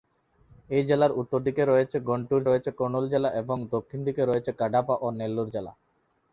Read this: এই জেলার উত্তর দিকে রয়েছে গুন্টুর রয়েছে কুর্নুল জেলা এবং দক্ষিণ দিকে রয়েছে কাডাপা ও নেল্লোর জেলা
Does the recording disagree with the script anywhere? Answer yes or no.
no